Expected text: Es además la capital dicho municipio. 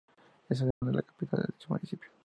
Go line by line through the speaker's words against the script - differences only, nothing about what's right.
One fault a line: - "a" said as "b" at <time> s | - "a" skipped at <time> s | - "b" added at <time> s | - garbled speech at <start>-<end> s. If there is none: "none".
- "de" added at 1.4 s